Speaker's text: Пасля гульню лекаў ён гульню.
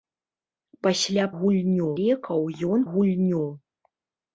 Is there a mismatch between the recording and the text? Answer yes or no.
no